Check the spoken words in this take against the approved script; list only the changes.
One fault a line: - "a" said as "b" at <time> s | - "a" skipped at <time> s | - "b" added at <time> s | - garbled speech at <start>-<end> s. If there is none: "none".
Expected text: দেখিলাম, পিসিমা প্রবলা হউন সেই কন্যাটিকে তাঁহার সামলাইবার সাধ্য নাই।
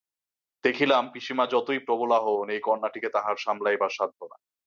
- "যতই" added at 1.4 s
- "সেই" said as "এই" at 2.5 s